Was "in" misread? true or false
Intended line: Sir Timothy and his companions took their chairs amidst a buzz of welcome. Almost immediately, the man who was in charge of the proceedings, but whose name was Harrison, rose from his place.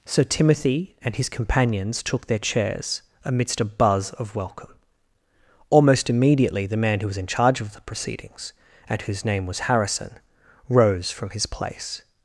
false